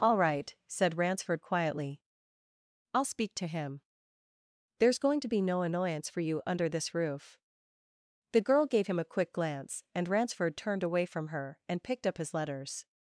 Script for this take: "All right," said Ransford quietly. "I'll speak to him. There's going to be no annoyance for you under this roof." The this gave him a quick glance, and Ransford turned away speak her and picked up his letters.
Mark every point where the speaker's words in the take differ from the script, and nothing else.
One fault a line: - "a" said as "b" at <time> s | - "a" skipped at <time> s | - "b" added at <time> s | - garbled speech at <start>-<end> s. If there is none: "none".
- "this" said as "girl" at 8.4 s
- "speak" said as "from" at 11.1 s